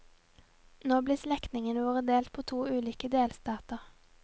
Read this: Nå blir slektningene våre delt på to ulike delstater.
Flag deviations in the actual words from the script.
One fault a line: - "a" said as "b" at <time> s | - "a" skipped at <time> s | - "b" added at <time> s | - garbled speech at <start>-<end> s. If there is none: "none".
none